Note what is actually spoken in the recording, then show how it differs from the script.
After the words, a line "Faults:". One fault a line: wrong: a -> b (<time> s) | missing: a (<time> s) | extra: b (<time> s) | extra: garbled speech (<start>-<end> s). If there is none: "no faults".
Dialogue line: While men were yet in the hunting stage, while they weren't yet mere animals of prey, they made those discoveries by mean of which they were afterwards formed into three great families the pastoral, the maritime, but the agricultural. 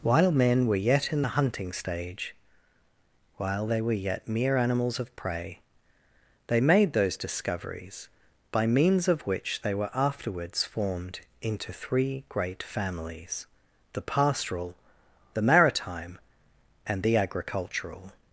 While men were yet in the hunting stage, while they were yet mere animals of prey, they made those discoveries by means of which they were afterwards formed into three great families the pastoral, the maritime, and the agricultural.
Faults:
wrong: weren't -> were (3.8 s)
wrong: mean -> means (8.7 s)
wrong: but -> and (16.8 s)